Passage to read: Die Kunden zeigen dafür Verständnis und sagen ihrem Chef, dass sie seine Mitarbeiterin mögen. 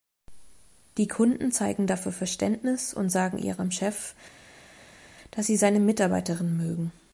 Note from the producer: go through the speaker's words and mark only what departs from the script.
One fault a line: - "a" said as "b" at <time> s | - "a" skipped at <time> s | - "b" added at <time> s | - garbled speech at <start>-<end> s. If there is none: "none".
none